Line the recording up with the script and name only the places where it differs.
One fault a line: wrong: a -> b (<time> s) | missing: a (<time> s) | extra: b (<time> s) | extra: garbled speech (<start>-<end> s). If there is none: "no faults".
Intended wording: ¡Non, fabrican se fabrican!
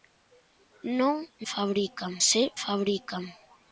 no faults